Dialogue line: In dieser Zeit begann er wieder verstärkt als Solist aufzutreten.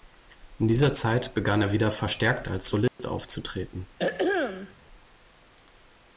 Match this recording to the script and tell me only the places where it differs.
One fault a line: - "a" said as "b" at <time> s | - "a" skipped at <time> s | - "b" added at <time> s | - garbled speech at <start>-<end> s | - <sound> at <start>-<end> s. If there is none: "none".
- dropout at 2.9-3.0 s
- throat clearing at 4.0-4.7 s